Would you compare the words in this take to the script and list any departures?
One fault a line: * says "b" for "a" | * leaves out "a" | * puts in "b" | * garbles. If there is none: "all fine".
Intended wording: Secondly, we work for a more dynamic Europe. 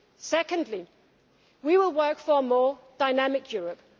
* puts in "will"